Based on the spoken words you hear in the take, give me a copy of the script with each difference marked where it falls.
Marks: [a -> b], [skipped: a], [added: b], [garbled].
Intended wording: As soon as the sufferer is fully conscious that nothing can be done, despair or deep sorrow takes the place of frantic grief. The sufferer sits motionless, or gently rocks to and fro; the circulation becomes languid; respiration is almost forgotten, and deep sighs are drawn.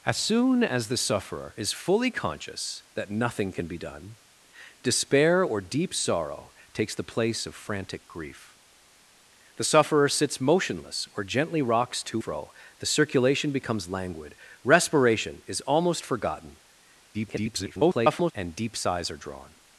As soon as the sufferer is fully conscious that nothing can be done, despair or deep sorrow takes the place of frantic grief. The sufferer sits motionless, or gently rocks to [skipped: and] fro; the circulation becomes languid; respiration is almost forgotten, [garbled] and deep sighs are drawn.